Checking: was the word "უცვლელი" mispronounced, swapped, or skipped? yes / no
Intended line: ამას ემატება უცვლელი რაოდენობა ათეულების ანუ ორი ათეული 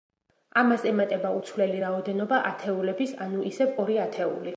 no